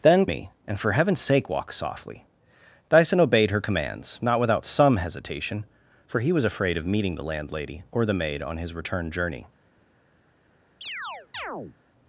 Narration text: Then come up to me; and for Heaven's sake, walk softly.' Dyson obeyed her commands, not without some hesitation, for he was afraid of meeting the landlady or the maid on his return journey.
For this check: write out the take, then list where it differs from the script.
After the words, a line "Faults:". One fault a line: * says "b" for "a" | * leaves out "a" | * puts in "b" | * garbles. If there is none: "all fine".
Then me; and for Heaven's sake, walk softly.' Dyson obeyed her commands, not without some hesitation, for he was afraid of meeting the landlady or the maid on his return journey.
Faults:
* leaves out "come up to"